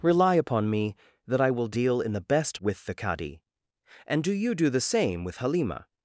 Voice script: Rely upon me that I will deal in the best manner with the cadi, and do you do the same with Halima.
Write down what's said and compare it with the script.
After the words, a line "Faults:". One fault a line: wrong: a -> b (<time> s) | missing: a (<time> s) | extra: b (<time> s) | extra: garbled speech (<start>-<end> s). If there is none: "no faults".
Rely upon me that I will deal in the best with the cadi, and do you do the same with Halima.
Faults:
missing: manner (2.6 s)